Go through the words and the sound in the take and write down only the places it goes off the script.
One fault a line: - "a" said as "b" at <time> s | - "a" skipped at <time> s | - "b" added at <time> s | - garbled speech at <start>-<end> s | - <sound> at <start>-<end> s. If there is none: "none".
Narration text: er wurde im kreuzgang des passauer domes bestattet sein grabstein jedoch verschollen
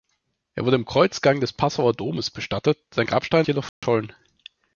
- dropout at 3.7-3.8 s